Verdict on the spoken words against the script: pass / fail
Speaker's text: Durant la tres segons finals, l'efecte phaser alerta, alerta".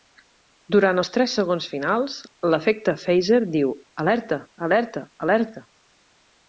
fail